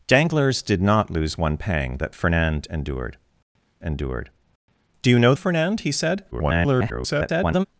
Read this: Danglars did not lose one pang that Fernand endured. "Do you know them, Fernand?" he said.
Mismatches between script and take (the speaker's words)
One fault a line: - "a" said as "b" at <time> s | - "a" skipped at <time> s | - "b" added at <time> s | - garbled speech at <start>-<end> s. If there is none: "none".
- "endured" added at 3.8 s
- "them" skipped at 5.3 s
- garbled speech at 6.3-7.7 s